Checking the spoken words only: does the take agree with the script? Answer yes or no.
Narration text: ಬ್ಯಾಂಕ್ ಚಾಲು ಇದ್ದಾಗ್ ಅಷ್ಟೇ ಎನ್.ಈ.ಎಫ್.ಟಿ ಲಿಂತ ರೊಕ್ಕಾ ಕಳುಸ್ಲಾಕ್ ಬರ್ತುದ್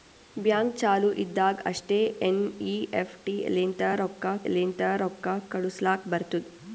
no